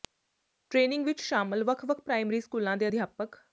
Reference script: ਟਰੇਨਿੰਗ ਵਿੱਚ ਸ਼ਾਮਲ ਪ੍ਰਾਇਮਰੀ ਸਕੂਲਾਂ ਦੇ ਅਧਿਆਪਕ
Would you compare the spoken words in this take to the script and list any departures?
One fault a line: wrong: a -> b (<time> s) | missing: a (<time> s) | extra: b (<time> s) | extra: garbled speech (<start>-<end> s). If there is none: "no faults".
extra: ਵੱਖ ਵੱਖ (1.6 s)